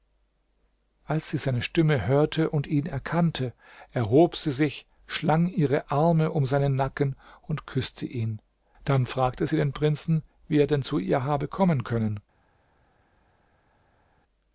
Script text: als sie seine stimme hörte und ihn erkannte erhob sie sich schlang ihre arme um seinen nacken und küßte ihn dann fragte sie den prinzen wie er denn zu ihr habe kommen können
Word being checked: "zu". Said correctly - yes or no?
yes